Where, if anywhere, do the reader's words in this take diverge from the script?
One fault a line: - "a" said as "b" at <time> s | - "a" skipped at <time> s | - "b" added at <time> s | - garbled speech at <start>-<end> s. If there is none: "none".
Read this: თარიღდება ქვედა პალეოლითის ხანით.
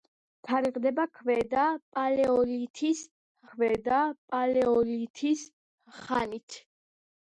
- "ქვედა პალეოლითის" added at 3.5 s